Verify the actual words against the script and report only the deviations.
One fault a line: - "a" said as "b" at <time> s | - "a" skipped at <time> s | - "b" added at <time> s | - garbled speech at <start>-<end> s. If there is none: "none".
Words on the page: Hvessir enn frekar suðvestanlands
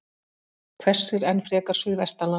none